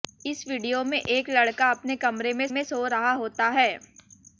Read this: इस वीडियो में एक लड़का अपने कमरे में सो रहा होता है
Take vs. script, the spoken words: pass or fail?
fail